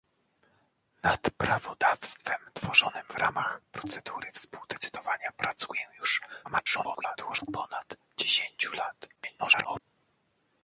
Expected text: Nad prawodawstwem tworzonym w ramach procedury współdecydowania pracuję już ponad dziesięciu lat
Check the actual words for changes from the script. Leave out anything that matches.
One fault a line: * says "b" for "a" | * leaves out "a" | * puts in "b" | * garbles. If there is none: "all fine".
* garbles
* garbles